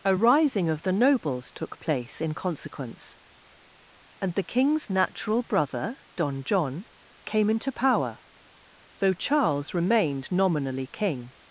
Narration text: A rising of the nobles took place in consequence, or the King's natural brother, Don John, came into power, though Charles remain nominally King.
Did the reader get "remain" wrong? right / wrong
wrong